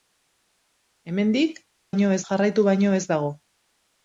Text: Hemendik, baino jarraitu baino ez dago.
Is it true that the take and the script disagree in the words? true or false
false